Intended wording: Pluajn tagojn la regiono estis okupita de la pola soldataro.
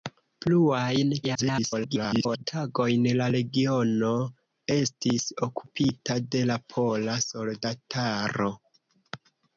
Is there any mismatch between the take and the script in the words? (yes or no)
yes